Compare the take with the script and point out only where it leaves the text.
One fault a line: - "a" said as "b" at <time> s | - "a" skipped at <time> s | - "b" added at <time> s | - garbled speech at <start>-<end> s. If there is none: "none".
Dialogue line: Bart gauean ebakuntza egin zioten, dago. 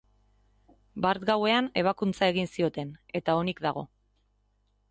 - "eta onik" added at 3.2 s